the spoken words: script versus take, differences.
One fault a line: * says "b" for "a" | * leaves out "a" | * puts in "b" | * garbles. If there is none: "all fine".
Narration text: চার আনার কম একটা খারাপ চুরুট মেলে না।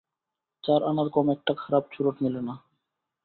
all fine